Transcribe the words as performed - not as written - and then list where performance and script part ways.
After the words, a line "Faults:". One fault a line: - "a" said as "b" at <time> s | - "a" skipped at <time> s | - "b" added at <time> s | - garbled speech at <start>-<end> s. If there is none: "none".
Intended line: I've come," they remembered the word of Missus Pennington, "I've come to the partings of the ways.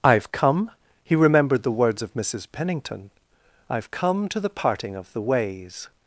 I've come," he remembered the words of Missus Pennington, "I've come to the parting of the ways.
Faults:
- "they" said as "he" at 1.0 s
- "word" said as "words" at 1.7 s
- "partings" said as "parting" at 4.5 s